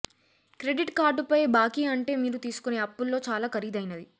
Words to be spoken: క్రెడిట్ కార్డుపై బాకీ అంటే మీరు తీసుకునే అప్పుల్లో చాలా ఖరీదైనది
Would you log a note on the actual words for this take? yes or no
no